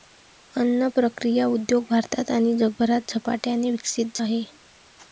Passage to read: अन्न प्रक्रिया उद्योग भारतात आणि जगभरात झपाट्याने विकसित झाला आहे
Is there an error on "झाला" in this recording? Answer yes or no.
yes